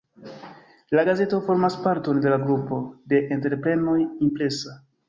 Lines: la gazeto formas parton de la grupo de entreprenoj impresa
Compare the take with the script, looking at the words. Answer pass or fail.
pass